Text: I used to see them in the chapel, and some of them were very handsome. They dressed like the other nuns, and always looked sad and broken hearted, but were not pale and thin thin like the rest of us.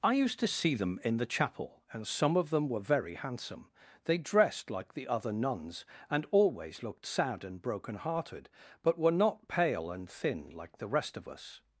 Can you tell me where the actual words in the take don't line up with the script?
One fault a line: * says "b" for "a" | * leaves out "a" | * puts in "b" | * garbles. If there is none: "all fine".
* leaves out "thin"